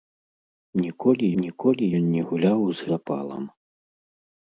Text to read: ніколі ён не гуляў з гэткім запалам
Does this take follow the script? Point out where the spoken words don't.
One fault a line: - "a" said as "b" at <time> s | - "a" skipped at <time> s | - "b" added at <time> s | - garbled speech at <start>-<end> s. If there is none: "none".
- "ніколі" added at 1.4 s
- "гэткім" skipped at 2.9 s